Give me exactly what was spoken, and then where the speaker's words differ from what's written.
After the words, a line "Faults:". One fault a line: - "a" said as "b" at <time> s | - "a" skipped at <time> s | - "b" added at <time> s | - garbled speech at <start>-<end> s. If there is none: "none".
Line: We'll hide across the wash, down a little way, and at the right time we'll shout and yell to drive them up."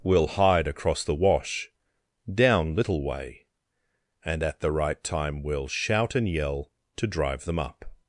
We'll hide across the wash, down little way, and at the right time we'll shout and yell to drive them up."
Faults:
- "a" skipped at 2.8 s